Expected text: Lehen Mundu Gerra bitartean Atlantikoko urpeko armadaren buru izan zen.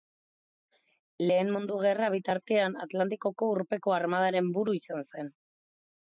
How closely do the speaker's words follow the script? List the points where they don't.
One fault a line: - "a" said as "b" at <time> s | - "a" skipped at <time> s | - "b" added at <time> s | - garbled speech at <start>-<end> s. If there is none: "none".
none